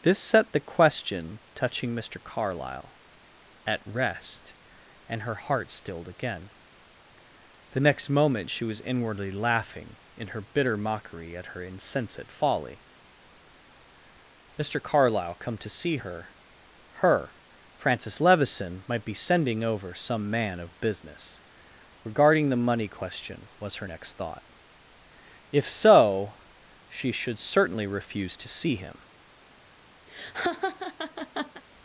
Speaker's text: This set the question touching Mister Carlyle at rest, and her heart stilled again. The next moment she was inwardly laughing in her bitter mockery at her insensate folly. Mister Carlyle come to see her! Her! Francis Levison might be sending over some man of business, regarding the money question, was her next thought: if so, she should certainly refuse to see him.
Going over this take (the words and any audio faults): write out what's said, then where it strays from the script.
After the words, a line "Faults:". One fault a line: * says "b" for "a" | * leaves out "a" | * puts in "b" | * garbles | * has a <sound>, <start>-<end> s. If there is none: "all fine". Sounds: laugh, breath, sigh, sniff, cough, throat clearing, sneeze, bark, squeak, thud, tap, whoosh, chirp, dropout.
This set the question touching Mister Carlyle at rest, and her heart stilled again. The next moment she was inwardly laughing in her bitter mockery at her insensate folly. Mister Carlyle come to see her! Her! Francis Levison might be sending over some man of business, regarding the money question, was her next thought: if so, she should certainly refuse to see him.
Faults:
* has a laugh, 30.1-31.6 s